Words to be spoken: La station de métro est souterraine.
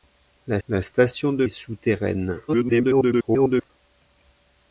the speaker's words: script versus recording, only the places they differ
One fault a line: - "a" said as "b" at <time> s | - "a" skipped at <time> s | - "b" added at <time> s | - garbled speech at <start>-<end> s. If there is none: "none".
- "la" added at 0.7 s
- "métro" skipped at 1.5 s
- garbled speech at 2.5-3.7 s